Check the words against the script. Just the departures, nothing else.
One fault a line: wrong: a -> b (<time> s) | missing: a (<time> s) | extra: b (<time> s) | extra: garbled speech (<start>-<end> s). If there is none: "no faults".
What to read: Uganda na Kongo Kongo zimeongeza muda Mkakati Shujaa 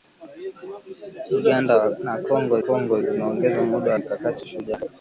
no faults